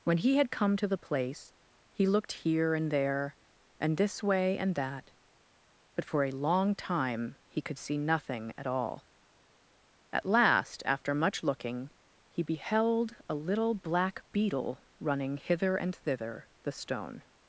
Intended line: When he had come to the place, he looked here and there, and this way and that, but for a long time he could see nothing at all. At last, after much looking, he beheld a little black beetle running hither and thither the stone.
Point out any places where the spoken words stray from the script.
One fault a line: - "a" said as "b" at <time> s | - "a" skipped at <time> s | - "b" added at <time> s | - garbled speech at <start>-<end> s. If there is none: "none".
none